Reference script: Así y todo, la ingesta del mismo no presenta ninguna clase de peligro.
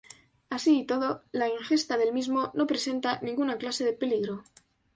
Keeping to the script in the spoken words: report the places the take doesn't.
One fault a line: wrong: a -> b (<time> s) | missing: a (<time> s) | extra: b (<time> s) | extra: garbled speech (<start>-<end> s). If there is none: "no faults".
no faults